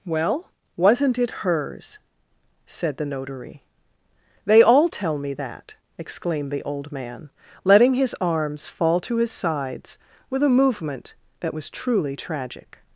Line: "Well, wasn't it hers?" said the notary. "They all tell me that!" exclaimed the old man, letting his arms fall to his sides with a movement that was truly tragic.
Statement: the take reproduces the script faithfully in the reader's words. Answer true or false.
true